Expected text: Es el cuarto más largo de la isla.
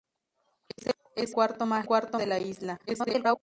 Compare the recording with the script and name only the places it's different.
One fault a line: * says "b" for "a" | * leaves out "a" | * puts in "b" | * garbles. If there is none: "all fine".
* leaves out "el"
* says "cuarto" for "largo"
* garbles